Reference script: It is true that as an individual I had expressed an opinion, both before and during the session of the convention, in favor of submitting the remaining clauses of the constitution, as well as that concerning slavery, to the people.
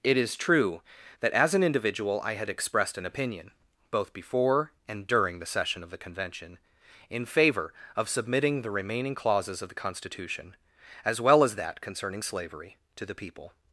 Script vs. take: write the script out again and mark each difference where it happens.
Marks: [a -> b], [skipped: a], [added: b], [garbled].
It is true that as an individual I had expressed an opinion, both before and during the session of the convention, in favor of submitting the remaining clauses of the constitution, as well as that concerning slavery, to the people.